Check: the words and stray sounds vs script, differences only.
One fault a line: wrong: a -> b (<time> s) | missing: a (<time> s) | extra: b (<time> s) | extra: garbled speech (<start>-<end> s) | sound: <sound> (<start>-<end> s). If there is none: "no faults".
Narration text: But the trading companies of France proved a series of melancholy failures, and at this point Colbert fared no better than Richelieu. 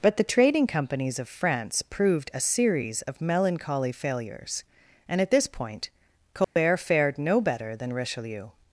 sound: dropout (6.4-6.6 s)